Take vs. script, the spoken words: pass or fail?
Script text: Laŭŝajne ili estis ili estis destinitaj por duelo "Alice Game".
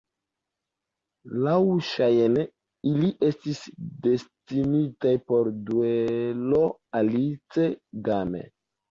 fail